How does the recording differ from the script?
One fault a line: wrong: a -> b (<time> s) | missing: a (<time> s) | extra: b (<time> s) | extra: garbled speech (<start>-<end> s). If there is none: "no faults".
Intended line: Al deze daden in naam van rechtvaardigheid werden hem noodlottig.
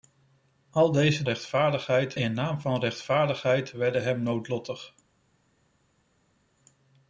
wrong: daden -> rechtvaardigheid (1.2 s)